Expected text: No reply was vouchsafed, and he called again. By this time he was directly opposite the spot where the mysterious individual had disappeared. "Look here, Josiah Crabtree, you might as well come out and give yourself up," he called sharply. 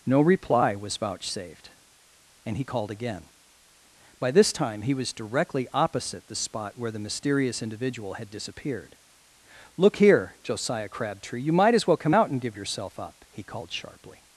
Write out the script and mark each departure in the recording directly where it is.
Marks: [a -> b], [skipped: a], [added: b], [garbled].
No reply was vouchsafed, and he called again. By this time he was directly opposite the spot where the mysterious individual had disappeared. "Look here, Josiah Crabtree, you might as well come out and give yourself up," he called sharply.